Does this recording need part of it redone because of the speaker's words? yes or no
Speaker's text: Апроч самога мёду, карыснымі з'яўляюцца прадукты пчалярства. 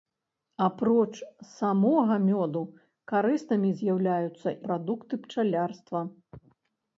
no